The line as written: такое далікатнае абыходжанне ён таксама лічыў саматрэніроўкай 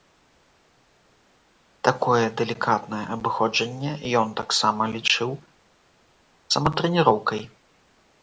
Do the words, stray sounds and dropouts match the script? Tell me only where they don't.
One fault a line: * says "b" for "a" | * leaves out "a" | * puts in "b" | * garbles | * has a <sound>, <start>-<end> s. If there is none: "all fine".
all fine